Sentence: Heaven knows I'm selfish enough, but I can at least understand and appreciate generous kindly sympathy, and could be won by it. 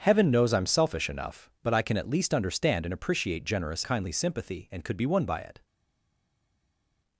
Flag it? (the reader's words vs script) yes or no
no